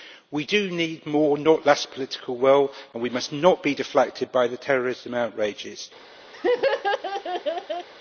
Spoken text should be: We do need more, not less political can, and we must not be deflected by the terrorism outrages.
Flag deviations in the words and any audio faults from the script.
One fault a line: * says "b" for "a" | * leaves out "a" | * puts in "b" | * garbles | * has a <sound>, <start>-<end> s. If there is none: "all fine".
* says "will" for "can"
* has a laugh, 6.3-7.9 s